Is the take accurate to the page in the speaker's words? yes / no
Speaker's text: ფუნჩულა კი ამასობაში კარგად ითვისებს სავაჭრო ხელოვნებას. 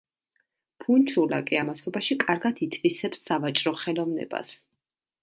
yes